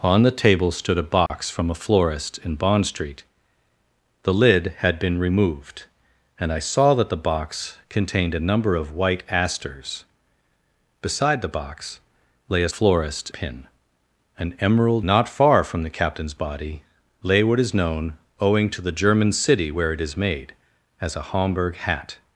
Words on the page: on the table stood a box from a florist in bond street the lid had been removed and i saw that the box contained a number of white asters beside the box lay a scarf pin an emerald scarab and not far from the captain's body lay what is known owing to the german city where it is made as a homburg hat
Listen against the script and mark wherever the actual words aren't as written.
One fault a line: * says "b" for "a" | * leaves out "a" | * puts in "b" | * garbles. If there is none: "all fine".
* says "florist" for "scarf"
* leaves out "scarab and"